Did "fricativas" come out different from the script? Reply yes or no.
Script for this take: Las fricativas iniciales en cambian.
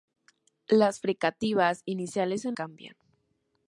no